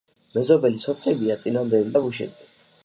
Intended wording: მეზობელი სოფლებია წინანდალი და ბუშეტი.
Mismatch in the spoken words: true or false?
false